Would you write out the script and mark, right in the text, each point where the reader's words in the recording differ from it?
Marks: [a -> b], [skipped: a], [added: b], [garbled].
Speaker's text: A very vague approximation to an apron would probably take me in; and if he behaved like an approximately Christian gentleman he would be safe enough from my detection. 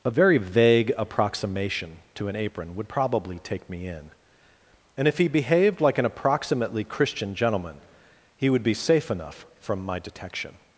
A very vague approximation to an apron would probably take me in; and if he behaved like an approximately Christian gentleman he would be safe enough from my detection.